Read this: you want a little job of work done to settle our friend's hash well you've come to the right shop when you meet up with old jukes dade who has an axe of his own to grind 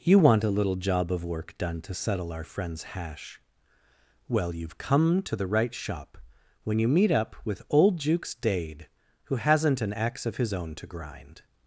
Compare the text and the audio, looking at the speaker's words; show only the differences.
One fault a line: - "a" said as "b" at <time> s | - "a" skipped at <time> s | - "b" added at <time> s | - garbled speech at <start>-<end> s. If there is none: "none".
- "has" said as "hasn't" at 9.4 s